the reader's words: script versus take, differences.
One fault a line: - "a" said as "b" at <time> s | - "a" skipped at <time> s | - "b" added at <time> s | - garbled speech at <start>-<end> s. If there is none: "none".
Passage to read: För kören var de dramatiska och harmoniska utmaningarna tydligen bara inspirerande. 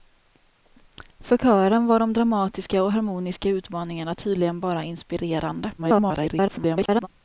- garbled speech at 5.8-7.1 s